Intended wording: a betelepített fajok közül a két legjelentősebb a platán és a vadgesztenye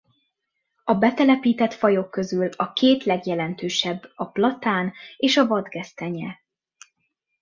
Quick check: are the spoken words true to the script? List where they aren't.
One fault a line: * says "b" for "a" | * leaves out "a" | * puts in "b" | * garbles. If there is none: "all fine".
all fine